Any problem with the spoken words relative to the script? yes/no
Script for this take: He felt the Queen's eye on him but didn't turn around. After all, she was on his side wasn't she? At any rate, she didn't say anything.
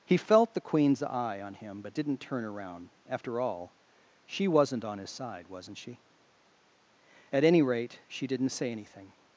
yes